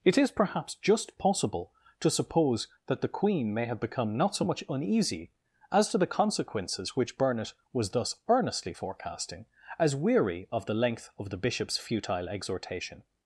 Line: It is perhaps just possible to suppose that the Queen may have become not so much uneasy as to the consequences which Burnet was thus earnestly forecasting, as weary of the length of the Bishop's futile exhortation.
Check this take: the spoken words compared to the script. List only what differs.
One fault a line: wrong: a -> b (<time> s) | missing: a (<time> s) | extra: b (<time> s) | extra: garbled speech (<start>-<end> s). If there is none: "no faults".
no faults